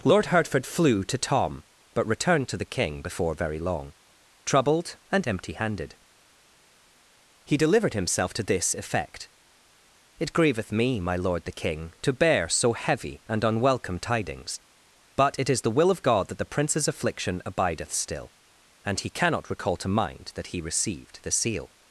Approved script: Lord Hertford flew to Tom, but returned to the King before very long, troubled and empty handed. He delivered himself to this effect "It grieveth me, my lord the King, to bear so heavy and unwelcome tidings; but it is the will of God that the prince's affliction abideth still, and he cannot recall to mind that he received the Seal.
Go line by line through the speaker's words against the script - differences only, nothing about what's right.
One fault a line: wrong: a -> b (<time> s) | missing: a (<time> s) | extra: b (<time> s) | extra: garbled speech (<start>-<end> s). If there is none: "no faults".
no faults